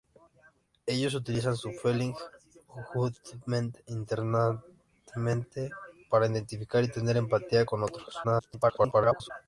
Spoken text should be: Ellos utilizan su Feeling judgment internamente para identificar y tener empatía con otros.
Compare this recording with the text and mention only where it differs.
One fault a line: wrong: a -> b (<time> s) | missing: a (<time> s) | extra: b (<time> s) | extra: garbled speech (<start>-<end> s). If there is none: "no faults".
extra: garbled speech (8.2-9.3 s)